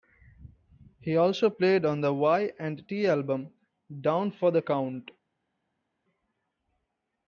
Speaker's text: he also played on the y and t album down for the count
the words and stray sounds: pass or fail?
pass